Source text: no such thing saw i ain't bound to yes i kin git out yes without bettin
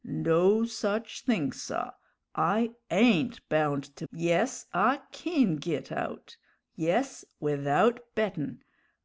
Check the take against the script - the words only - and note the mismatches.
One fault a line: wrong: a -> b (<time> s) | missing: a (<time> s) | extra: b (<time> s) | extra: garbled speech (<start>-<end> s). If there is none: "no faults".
no faults